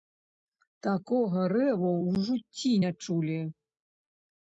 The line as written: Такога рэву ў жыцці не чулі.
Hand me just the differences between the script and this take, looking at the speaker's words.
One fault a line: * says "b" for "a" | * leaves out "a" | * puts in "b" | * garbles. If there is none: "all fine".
all fine